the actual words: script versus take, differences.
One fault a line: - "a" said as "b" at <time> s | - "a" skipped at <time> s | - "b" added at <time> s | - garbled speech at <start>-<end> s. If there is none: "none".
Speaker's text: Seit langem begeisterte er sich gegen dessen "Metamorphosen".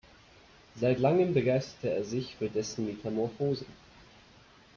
- "gegen" said as "für" at 2.4 s